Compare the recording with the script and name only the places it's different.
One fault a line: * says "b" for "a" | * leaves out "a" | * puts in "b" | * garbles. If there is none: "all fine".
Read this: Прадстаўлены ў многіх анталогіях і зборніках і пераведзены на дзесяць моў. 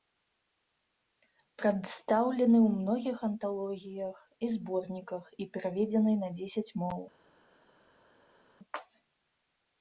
all fine